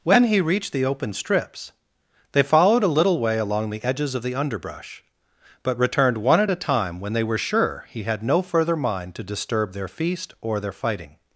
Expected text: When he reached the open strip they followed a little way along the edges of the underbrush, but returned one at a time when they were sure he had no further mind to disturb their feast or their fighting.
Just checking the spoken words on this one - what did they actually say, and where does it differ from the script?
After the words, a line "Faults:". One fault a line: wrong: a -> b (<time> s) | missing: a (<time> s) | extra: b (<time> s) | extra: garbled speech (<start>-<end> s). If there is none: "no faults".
When he reached the open strips they followed a little way along the edges of the underbrush, but returned one at a time when they were sure he had no further mind to disturb their feast or their fighting.
Faults:
wrong: strip -> strips (1.1 s)